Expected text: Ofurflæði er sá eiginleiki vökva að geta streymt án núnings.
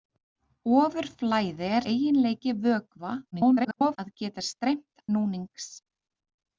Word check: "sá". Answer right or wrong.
wrong